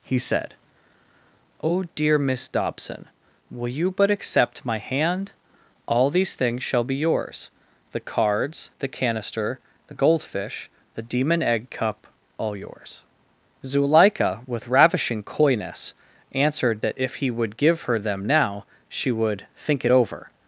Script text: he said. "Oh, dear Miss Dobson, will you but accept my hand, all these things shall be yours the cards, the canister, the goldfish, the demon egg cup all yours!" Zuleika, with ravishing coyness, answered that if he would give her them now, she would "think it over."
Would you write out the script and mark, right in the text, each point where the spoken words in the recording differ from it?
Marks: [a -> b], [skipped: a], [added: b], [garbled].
he said. "Oh, dear Miss Dobson, will you but accept my hand, all these things shall be yours the cards, the canister, the goldfish, the demon egg cup all yours!" Zuleika, with ravishing coyness, answered that if he would give her them now, she would "think it over."